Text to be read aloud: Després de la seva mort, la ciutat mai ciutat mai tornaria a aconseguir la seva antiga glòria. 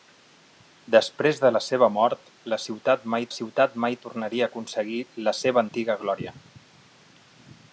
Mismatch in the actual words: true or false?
false